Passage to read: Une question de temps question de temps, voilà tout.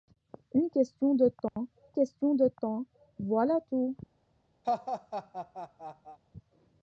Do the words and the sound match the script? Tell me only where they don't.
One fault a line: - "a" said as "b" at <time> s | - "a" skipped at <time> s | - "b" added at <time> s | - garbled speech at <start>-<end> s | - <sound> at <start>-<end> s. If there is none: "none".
- dropout at 1.5-1.6 s
- laugh at 4.6-6.2 s